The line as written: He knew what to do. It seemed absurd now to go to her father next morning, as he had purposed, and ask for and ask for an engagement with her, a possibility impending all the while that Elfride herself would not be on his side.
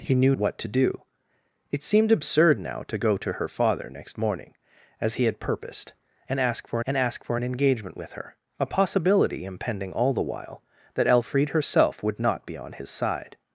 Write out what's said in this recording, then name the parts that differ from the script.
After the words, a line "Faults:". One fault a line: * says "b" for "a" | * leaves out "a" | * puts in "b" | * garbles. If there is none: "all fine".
He knew what to do. It seemed absurd now to go to her father next morning, as he had purposed, and ask for and ask for an engagement with her, a possibility impending all the while that Elfride herself would not be on his side.
Faults:
all fine